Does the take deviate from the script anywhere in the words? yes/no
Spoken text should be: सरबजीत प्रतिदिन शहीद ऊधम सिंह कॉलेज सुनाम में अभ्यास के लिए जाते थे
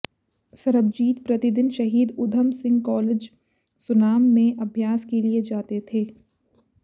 no